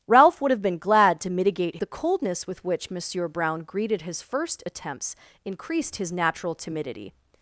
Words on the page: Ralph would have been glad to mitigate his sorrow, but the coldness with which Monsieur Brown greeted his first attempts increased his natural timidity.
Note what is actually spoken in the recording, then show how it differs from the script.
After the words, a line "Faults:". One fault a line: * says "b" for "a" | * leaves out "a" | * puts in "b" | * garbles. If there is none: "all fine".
Ralph would have been glad to mitigate the coldness with which Monsieur Brown greeted his first attempts increased his natural timidity.
Faults:
* leaves out "his sorrow but"